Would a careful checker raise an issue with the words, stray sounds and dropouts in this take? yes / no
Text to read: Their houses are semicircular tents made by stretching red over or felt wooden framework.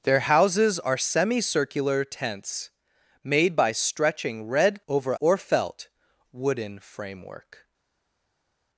no